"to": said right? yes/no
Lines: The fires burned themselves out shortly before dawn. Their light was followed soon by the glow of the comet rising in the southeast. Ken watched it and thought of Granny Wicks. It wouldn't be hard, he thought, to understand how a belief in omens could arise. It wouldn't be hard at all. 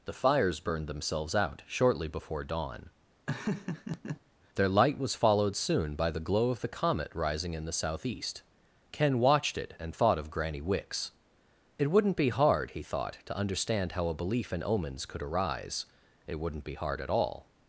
yes